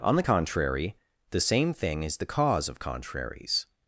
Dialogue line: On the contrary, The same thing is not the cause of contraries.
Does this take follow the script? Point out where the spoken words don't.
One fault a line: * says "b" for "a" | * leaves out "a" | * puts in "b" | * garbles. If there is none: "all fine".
* leaves out "not"